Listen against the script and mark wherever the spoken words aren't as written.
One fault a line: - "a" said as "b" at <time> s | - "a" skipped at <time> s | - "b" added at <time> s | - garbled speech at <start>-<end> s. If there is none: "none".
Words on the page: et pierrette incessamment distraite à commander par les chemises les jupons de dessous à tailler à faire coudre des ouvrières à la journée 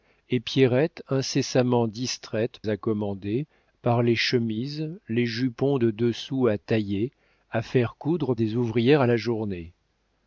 none